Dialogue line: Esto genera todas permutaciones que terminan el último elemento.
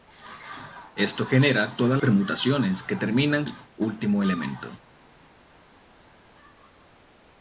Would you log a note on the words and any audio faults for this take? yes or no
no